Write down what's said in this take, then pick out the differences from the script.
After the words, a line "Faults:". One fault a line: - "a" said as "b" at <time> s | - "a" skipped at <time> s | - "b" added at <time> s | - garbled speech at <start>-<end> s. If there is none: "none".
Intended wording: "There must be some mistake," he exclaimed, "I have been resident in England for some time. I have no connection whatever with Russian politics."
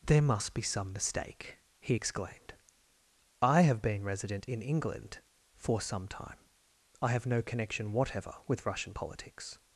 "There must be some mistake," he exclaimed, "I have been resident in England for some time. I have no connection whatever with Russian politics."
Faults:
none